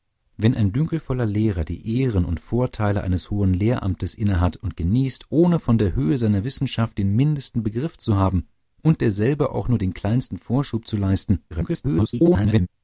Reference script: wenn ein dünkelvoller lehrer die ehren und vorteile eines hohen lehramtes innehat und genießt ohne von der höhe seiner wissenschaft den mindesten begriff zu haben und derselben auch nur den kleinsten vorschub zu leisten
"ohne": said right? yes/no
yes